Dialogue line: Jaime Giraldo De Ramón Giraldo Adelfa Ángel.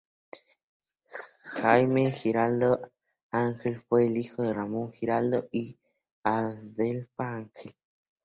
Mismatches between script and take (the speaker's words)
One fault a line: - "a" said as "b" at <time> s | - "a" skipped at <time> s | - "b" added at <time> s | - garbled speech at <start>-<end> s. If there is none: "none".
- "Ángel fue hijo" added at 3.3 s
- "y" added at 5.5 s